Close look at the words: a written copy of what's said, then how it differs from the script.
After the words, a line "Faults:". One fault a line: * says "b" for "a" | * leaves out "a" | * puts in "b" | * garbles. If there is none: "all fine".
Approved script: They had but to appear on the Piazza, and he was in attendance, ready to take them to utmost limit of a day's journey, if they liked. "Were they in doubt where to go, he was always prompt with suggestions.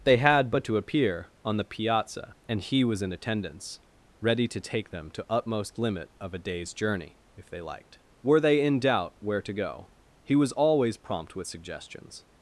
They had but to appear on the Piazza, and he was in attendance, ready to take them to utmost limit of a day's journey, if they liked. "Were they in doubt where to go, he was always prompt with suggestions.
Faults:
all fine